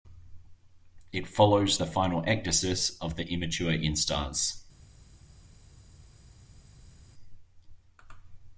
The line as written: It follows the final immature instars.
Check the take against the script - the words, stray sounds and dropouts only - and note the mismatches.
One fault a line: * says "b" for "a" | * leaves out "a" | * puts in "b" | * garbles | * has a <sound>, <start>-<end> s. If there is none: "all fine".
* puts in "ecdysis of the"